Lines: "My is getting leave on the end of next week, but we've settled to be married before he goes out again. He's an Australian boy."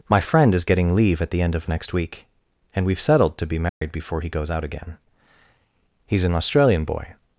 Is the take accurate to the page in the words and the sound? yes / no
no